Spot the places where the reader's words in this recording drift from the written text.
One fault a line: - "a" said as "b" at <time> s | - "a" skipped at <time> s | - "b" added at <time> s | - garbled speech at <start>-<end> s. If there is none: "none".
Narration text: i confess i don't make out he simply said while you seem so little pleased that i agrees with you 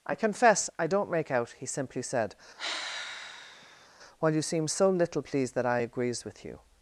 none